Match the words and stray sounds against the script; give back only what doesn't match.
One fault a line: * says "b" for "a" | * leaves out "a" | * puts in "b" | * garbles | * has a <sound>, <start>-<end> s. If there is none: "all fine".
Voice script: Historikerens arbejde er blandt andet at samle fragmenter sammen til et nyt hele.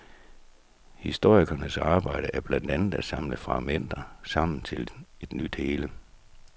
all fine